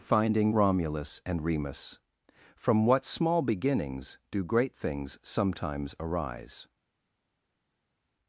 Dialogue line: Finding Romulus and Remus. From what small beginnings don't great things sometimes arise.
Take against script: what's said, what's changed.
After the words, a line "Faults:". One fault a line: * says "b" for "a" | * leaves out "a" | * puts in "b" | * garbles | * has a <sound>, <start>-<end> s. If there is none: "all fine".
Finding Romulus and Remus. From what small beginnings do great things sometimes arise.
Faults:
* says "do" for "don't"